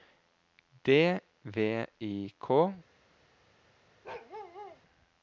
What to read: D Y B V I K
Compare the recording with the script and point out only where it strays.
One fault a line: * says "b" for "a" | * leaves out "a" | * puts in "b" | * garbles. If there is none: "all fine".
* leaves out "Y B"